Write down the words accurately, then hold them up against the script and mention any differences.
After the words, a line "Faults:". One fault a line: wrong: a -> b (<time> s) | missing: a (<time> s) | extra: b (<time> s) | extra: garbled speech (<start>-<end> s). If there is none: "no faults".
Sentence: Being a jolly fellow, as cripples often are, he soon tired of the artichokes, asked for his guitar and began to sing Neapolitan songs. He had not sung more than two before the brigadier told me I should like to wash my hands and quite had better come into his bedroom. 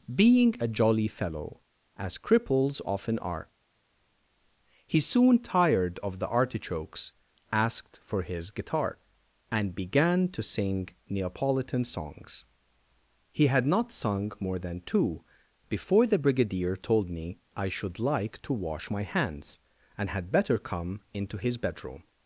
Being a jolly fellow, as cripples often are, he soon tired of the artichokes, asked for his guitar and began to sing Neapolitan songs. He had not sung more than two before the brigadier told me I should like to wash my hands and had better come into his bedroom.
Faults:
missing: quite (20.1 s)